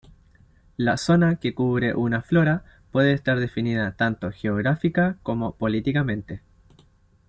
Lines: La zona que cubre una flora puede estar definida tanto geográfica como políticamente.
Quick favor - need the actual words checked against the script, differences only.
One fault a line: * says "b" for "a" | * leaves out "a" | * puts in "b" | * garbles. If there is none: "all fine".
all fine